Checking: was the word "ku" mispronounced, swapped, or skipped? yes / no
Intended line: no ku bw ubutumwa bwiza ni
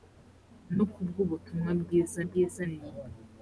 no